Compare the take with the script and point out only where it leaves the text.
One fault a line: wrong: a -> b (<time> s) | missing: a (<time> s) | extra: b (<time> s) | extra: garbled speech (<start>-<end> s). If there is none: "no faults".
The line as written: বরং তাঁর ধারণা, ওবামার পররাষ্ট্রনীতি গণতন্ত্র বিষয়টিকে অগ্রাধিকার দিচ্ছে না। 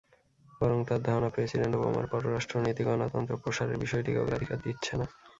extra: প্রেসিডেন্ট (1.3 s)
extra: প্রসারের (3.4 s)